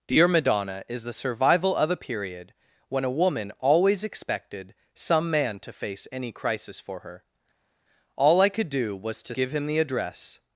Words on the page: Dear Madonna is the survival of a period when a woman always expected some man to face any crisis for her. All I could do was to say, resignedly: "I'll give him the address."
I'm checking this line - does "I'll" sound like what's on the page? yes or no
no